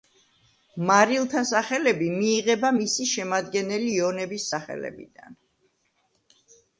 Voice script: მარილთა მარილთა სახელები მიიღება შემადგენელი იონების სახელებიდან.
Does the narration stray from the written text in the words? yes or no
yes